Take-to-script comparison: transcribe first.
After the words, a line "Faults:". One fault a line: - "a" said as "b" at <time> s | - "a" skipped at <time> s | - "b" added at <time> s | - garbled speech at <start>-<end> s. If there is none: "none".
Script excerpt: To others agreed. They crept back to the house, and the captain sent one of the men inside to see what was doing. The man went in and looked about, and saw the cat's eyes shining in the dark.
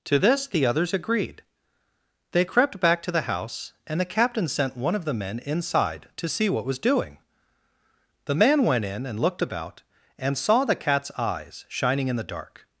To this the others agreed. They crept back to the house, and the captain sent one of the men inside to see what was doing. The man went in and looked about, and saw the cat's eyes shining in the dark.
Faults:
- "this the" added at 0.2 s